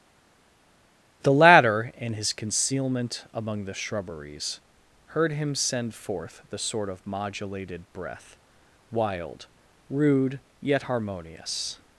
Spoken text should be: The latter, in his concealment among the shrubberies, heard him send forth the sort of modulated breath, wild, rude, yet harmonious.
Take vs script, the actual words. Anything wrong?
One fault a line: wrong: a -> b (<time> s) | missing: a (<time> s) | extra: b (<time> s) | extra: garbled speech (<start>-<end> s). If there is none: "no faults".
no faults